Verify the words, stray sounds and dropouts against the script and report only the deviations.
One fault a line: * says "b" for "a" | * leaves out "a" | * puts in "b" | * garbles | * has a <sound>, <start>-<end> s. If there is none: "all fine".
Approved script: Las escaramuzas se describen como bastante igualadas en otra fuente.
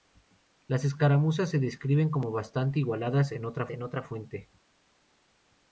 * puts in "en otra"